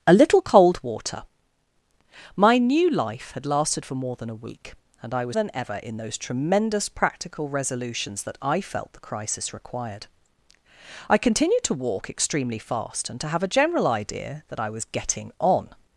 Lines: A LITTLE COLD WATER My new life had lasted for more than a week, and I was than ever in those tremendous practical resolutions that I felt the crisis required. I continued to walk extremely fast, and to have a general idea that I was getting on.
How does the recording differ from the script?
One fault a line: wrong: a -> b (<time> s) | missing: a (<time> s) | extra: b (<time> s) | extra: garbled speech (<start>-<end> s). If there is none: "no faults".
no faults